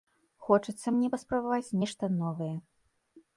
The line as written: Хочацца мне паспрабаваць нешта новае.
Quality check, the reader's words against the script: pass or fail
pass